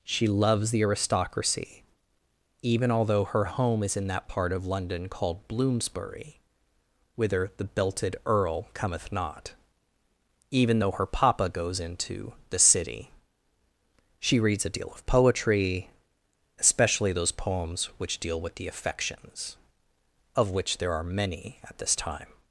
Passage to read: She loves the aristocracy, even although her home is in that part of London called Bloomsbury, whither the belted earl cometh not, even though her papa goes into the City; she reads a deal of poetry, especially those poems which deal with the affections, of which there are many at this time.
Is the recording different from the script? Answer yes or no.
no